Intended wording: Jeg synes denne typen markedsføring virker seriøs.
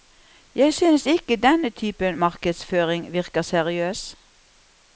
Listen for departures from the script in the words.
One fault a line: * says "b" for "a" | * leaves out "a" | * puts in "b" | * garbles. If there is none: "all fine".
* puts in "ikke"